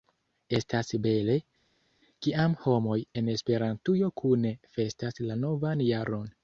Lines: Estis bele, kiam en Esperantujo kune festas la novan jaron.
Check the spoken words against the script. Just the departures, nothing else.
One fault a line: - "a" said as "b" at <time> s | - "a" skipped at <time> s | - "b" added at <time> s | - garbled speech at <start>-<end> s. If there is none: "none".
- "Estis" said as "Estas" at 0.6 s
- "homoj" added at 2.6 s